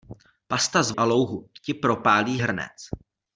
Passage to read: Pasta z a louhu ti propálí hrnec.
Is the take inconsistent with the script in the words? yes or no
no